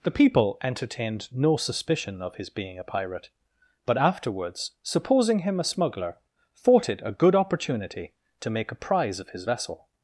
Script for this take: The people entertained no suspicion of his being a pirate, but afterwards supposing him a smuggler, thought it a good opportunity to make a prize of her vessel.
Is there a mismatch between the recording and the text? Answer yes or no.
yes